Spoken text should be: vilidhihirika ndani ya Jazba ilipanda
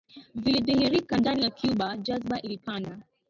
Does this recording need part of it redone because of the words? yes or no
yes